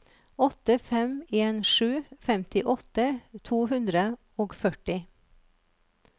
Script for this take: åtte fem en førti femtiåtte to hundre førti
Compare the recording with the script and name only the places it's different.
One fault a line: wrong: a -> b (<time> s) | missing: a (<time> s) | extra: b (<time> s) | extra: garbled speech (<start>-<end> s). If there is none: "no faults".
wrong: førti -> sju (1.6 s)
extra: og (4.5 s)